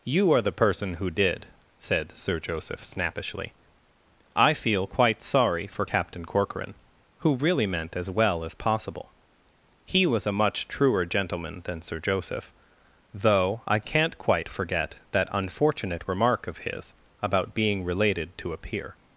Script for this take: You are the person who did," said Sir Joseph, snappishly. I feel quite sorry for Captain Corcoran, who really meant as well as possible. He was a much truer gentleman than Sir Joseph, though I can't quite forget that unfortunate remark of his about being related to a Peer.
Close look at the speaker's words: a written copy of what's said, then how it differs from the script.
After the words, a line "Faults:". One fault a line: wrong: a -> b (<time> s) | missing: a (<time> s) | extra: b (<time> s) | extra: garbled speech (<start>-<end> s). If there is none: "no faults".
You are the person who did," said Sir Joseph, snappishly. I feel quite sorry for Captain Corcoran, who really meant as well as possible. He was a much truer gentleman than Sir Joseph, though I can't quite forget that unfortunate remark of his about being related to a Peer.
Faults:
no faults